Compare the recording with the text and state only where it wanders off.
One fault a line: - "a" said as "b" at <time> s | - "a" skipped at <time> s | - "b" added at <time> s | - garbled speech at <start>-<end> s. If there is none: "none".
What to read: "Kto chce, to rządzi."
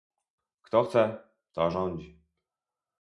none